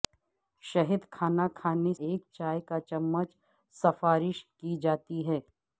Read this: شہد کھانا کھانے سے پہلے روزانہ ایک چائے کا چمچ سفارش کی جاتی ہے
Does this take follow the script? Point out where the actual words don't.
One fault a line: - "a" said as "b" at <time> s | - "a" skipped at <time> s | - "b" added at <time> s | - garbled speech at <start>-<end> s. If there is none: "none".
- "سے پہلے روزانہ" skipped at 1.9 s